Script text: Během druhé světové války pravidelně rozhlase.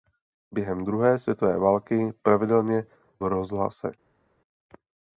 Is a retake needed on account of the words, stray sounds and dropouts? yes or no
no